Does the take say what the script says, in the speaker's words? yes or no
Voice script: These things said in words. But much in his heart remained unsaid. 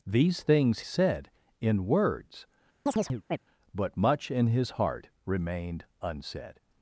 yes